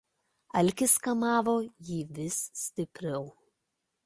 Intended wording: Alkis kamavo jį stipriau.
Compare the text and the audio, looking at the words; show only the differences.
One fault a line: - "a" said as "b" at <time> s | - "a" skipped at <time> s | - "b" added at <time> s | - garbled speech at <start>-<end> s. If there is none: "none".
- "vis" added at 2.2 s